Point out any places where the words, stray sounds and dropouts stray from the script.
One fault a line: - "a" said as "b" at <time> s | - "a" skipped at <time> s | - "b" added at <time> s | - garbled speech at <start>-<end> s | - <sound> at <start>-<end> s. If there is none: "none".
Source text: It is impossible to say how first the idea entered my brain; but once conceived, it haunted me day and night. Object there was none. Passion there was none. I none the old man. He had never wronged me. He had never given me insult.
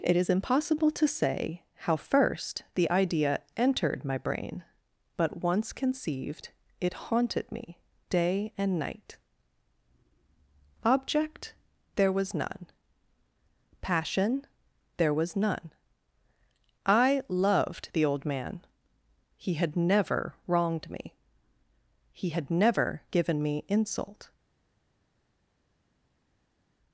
- "none" said as "loved" at 17.3 s